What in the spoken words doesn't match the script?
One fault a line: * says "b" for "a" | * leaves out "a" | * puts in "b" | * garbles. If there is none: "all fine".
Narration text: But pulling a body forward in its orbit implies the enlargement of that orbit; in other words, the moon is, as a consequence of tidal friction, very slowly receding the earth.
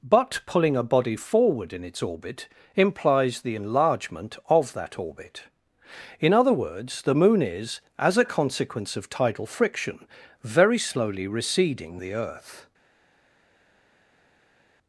all fine